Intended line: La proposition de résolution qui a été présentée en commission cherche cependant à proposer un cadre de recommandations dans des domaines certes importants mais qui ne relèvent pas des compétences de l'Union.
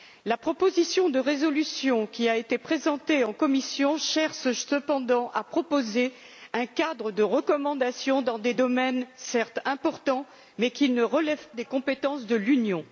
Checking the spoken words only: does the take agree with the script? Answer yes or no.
no